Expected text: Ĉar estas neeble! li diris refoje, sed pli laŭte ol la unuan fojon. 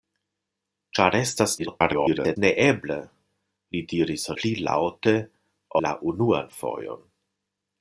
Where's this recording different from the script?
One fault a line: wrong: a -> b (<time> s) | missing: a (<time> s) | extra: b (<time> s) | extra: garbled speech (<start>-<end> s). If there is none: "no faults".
extra: garbled speech (1.6-2.4 s)
missing: refoje sed (4.3 s)
missing: ol (5.2 s)